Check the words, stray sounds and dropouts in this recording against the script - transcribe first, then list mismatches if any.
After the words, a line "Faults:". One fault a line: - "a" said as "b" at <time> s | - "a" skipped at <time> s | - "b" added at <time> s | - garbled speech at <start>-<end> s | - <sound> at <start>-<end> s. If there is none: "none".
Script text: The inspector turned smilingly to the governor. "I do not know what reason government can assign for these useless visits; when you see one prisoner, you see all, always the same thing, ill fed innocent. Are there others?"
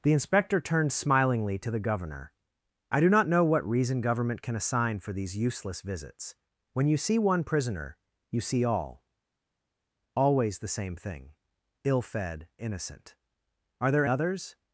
The inspector turned smilingly to the governor. "I do not know what reason government can assign for these useless visits; when you see one prisoner, you see all, always the same thing, ill fed innocent. Are there others?"
Faults:
none